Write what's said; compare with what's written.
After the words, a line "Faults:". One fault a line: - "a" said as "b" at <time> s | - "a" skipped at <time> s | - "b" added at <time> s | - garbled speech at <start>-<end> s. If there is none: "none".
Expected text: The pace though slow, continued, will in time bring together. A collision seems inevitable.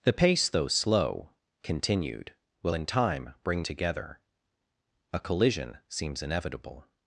The pace though slow, continued, will in time bring together. A collision seems inevitable.
Faults:
none